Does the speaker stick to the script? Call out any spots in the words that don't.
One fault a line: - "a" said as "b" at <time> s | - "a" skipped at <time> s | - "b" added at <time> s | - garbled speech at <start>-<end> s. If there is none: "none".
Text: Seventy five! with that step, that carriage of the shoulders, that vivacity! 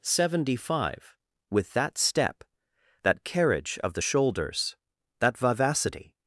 none